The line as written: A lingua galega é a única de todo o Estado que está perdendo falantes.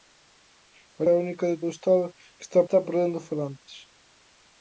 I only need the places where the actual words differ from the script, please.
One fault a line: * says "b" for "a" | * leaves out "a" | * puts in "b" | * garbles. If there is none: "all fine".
* leaves out "lingua galega"
* leaves out "todo"
* puts in "está"